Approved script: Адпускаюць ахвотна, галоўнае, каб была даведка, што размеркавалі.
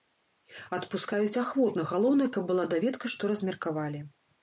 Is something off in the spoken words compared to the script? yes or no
no